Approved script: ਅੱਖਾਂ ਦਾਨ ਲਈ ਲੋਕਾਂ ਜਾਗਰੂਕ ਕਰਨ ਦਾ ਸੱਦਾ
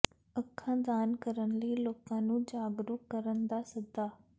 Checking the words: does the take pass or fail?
fail